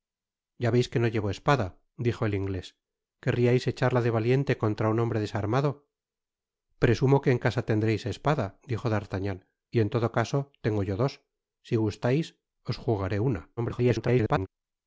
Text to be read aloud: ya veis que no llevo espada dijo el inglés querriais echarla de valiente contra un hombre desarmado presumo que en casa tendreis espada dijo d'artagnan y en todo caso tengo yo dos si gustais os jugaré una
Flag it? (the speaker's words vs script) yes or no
yes